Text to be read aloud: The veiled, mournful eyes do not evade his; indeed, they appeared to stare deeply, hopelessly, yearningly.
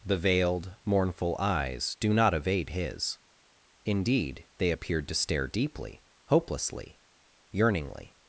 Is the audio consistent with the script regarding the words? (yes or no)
yes